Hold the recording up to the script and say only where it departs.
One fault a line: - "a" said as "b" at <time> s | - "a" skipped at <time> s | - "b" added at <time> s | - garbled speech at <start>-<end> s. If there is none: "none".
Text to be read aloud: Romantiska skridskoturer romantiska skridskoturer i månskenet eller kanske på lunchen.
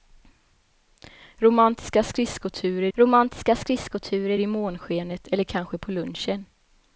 none